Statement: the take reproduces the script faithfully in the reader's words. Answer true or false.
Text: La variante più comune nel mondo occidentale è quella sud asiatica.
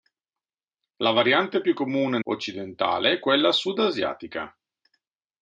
false